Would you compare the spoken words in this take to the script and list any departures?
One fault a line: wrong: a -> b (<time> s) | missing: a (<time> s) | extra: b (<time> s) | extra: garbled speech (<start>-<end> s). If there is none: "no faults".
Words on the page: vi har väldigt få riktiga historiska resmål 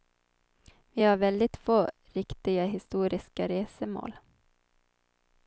no faults